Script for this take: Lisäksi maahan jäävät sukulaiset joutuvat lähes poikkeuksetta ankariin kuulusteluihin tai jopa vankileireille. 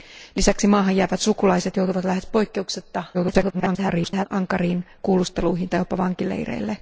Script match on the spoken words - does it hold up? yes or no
no